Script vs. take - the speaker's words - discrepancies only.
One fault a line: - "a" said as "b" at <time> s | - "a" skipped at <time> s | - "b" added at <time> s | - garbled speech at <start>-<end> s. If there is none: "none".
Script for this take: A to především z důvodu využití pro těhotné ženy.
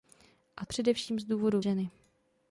- "to" skipped at 0.7 s
- "využití pro těhotné" skipped at 1.6 s